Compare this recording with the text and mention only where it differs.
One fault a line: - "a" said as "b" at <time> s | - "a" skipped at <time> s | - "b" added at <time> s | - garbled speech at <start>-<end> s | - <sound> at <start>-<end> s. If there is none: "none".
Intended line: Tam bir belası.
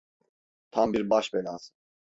- "baş" added at 1.1 s